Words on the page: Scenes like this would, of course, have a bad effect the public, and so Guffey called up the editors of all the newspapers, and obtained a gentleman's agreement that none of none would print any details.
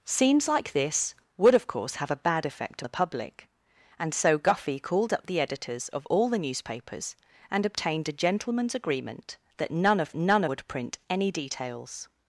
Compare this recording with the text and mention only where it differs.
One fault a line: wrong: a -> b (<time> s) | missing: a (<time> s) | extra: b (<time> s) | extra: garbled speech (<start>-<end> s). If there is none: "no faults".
no faults